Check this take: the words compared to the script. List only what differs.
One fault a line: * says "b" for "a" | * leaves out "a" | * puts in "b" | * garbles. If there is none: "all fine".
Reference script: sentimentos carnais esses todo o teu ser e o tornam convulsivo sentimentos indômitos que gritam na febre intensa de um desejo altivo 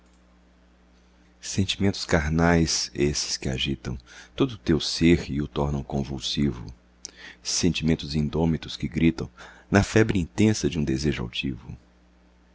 * puts in "que agitam"